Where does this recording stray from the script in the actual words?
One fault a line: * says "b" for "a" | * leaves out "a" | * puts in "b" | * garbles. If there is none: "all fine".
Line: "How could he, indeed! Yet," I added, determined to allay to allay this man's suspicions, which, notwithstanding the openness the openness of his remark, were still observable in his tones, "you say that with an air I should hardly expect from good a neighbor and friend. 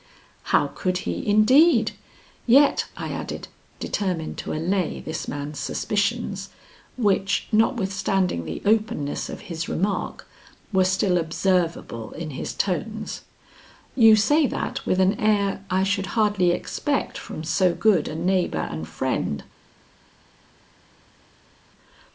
* leaves out "to allay"
* leaves out "the openness"
* puts in "so"